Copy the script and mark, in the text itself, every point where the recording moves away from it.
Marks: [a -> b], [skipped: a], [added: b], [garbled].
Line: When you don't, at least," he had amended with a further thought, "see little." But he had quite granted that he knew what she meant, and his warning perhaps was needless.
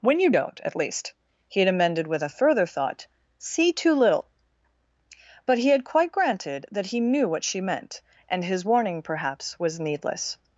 When you don't, at least," he had amended with a further thought, "see [added: too] little." But he had quite granted that he knew what she meant, and his warning perhaps was needless.